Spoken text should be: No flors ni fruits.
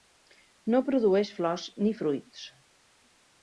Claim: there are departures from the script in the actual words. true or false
true